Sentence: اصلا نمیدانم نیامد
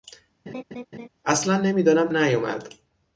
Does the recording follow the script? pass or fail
pass